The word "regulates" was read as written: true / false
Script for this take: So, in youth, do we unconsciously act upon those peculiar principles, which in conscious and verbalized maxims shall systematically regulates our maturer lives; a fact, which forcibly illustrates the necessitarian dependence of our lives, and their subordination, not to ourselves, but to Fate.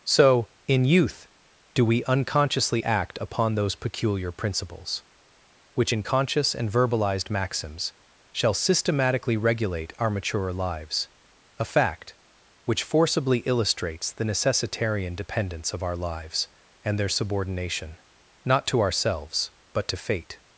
false